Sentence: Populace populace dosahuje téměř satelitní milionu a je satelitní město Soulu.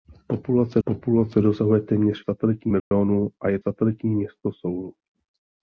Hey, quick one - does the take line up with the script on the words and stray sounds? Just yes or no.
no